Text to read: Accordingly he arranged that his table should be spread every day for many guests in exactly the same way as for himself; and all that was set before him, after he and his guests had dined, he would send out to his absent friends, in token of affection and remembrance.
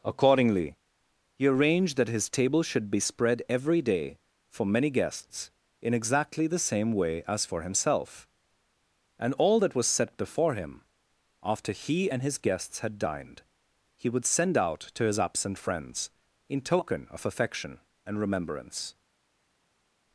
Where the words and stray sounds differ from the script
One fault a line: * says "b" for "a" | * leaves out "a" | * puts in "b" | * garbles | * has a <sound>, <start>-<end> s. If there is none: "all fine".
all fine